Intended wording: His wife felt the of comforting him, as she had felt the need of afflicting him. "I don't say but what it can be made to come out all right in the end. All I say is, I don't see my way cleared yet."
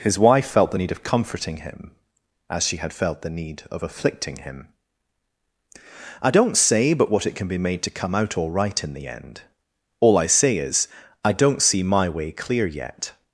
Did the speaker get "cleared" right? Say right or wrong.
wrong